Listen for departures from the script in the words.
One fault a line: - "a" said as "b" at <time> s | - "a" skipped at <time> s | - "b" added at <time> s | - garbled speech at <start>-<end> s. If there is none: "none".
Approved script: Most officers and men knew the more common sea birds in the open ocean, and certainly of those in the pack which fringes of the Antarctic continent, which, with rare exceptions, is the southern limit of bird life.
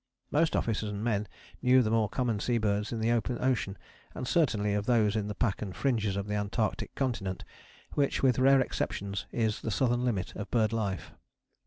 - "which" said as "and" at 5.6 s